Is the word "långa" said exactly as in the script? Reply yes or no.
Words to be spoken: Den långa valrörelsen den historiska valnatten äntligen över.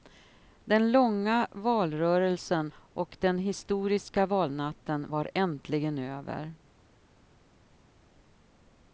yes